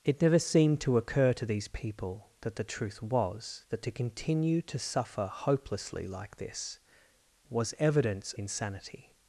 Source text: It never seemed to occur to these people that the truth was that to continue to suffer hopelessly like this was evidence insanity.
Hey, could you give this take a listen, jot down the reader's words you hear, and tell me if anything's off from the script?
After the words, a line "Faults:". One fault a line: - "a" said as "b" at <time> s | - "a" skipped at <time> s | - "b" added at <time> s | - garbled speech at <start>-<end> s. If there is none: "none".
It never seemed to occur to these people that the truth was that to continue to suffer hopelessly like this was evidence insanity.
Faults:
none